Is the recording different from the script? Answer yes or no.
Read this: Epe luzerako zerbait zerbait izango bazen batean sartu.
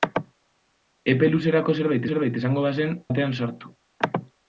no